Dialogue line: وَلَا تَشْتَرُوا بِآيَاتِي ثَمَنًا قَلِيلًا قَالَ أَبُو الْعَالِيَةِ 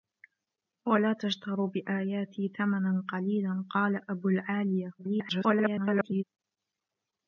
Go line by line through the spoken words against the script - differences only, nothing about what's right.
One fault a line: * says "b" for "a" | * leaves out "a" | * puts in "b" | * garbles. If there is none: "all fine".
* garbles